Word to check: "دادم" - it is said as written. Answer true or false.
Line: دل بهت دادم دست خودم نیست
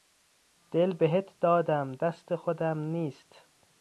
true